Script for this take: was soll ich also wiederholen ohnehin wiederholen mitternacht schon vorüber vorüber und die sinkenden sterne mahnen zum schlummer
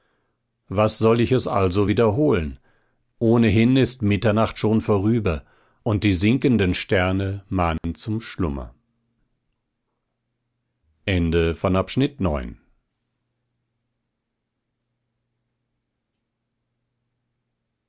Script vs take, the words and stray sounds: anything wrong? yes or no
yes